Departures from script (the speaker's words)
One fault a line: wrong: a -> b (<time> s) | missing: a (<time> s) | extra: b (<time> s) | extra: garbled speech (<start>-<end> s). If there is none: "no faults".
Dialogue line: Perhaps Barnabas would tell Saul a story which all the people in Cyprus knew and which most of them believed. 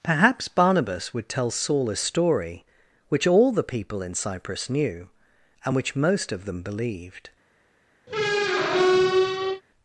no faults